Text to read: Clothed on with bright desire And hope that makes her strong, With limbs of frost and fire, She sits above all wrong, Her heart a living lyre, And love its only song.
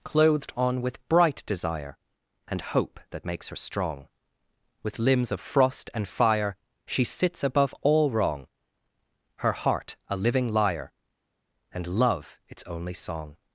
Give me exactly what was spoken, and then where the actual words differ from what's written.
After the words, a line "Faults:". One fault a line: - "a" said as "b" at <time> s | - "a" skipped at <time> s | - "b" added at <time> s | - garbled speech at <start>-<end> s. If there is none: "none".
Clothed on with bright desire And hope that makes her strong, With limbs of frost and fire, She sits above all wrong, Her heart a living lyre, And love its only song.
Faults:
none